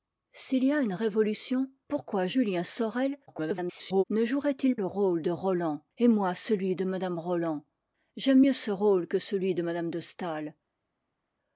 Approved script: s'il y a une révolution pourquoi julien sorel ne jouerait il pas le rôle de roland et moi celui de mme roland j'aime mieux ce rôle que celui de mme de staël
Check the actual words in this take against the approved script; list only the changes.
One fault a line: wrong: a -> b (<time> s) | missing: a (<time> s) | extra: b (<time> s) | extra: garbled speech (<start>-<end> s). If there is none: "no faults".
extra: garbled speech (3.3-4.0 s)
missing: pas (4.8 s)